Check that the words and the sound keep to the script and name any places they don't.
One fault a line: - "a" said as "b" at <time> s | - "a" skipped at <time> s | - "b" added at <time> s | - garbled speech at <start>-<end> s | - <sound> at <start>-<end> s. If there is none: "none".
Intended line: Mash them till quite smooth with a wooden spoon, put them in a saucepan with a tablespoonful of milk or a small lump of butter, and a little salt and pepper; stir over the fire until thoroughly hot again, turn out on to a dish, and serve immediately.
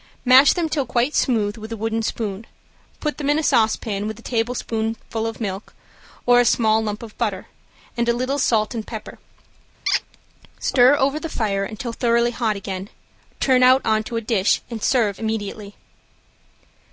- squeak at 9.9-10.0 s